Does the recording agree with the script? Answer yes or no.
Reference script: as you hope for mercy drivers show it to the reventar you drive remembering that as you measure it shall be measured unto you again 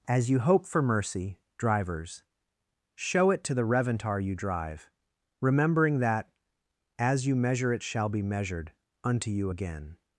yes